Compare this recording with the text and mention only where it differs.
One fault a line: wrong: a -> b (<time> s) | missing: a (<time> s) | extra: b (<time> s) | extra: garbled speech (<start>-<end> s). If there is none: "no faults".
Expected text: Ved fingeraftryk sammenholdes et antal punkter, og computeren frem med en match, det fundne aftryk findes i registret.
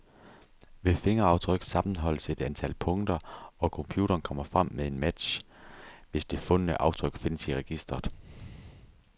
extra: kommer (4.2 s)
extra: hvis (6.1 s)